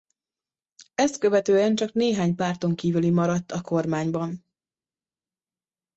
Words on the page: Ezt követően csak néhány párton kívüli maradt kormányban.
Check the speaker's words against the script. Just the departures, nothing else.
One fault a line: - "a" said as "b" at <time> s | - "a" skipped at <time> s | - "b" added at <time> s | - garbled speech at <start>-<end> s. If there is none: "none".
- "a" added at 3.5 s